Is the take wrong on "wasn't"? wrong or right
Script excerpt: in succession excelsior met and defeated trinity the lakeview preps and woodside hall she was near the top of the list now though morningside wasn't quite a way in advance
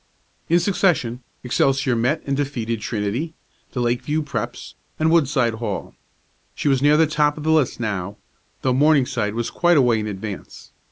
wrong